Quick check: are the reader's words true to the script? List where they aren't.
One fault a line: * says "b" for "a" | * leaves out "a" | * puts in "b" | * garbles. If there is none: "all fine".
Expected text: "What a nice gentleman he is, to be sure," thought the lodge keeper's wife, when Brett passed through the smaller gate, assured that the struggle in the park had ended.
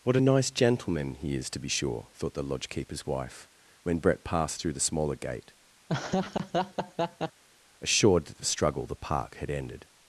* leaves out "in"